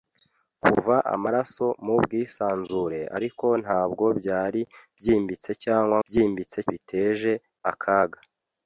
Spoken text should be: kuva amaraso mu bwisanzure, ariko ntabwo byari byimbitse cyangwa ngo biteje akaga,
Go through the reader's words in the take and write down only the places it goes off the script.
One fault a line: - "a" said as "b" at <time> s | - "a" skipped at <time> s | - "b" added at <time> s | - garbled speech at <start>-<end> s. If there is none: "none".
- "ngo" said as "byimbitse" at 6.1 s